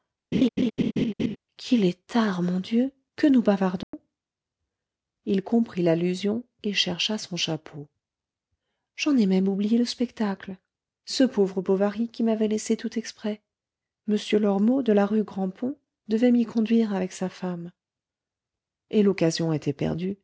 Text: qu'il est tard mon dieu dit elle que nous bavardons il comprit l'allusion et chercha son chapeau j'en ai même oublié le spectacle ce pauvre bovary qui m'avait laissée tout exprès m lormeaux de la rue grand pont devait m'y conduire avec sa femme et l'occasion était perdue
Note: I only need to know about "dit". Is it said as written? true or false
false